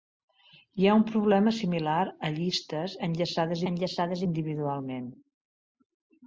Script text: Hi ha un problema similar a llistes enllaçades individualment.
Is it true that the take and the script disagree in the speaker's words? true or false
true